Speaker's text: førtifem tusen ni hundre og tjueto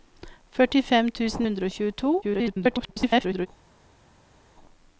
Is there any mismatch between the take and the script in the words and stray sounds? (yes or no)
yes